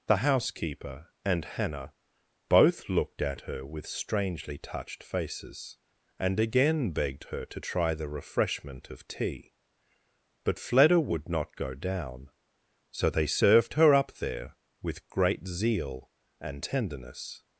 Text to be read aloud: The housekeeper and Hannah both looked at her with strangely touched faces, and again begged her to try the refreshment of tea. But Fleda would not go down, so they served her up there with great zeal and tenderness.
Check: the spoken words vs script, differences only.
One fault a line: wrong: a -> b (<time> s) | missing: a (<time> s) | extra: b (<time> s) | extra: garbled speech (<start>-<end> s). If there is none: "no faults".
no faults